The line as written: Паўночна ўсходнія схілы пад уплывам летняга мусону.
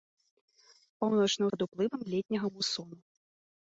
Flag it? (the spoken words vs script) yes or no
yes